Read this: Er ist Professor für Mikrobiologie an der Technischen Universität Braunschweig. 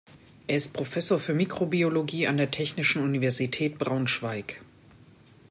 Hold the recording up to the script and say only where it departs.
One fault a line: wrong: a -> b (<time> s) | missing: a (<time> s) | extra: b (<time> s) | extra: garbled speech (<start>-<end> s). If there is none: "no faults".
no faults